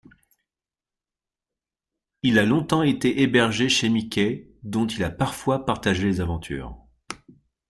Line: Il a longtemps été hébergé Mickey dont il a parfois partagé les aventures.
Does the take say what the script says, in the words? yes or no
no